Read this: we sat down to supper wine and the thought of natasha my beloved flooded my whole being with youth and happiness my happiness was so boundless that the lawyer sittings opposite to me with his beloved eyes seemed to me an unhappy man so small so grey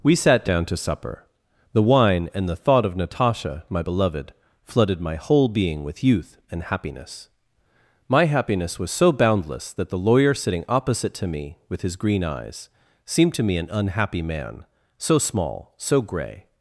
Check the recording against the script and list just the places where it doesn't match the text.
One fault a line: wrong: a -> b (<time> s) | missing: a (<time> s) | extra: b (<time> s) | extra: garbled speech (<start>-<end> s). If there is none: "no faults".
extra: the (1.7 s)
wrong: sittings -> sitting (10.3 s)
wrong: beloved -> green (12.0 s)